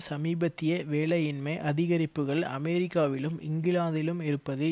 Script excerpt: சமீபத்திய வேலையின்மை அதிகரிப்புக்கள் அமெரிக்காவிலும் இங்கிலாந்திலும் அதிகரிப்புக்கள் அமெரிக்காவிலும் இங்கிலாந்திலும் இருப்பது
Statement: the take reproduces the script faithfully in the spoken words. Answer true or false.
false